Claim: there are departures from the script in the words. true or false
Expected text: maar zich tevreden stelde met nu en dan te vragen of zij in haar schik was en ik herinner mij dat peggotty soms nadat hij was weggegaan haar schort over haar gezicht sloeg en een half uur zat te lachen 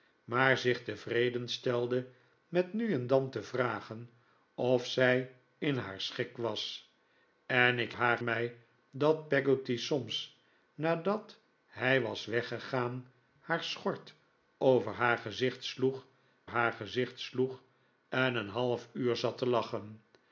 true